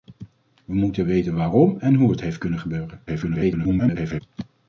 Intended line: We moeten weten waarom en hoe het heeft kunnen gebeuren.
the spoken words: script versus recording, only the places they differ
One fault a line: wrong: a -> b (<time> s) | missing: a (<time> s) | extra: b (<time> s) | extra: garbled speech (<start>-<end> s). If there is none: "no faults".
extra: garbled speech (3.1-4.2 s)